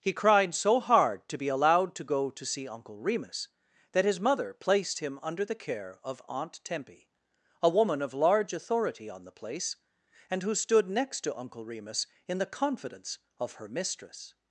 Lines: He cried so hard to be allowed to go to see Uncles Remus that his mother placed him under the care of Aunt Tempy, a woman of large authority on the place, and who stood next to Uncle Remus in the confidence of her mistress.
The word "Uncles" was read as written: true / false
false